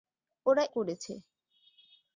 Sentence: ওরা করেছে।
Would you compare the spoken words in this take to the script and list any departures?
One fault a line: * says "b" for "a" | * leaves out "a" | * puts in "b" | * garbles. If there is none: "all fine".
all fine